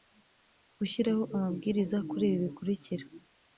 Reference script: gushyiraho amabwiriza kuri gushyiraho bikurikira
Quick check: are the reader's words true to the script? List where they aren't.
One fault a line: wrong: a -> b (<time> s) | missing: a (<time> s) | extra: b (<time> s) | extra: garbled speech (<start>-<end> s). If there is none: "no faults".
wrong: gushyiraho -> ibi (2.3 s)